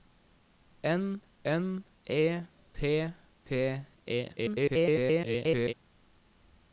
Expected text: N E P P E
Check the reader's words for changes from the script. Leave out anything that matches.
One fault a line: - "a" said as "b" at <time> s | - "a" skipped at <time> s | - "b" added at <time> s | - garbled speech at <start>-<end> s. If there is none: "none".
- "n" added at 1.4 s
- garbled speech at 4.4-5.7 s